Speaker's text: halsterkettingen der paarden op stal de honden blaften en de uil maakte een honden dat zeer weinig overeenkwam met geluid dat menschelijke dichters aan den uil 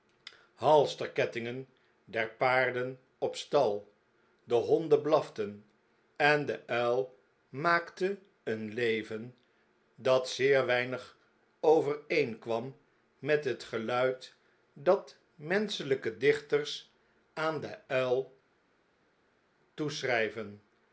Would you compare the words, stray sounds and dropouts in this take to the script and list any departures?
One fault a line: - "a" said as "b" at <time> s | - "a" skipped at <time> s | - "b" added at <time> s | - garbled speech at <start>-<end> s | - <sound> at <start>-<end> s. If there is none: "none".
- "honden" said as "leven" at 8.7 s
- "het" added at 13.4 s